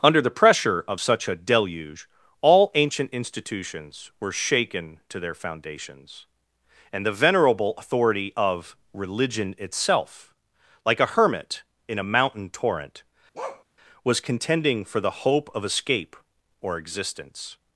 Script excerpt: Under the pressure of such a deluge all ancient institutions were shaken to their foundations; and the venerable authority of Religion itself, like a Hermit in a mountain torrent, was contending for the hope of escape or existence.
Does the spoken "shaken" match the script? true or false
true